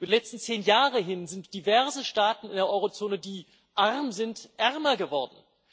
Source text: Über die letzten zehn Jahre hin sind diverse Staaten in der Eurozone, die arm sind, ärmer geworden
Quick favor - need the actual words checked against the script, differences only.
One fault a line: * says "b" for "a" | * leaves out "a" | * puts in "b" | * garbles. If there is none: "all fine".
all fine